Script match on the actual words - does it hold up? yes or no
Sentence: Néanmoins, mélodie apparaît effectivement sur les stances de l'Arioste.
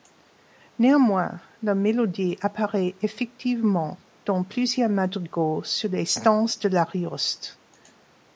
no